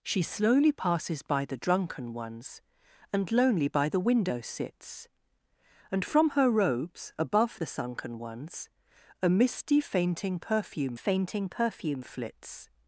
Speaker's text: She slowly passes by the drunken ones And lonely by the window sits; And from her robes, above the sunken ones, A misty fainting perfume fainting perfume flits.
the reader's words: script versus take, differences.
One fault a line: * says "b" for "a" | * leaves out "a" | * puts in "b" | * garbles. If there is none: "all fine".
all fine